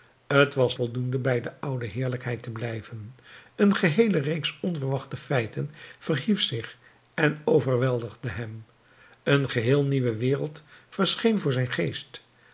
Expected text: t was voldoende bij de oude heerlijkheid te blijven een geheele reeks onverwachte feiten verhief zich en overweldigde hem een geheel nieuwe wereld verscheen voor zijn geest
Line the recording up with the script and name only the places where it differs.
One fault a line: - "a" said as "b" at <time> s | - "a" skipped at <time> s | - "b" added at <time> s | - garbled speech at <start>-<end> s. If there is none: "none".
none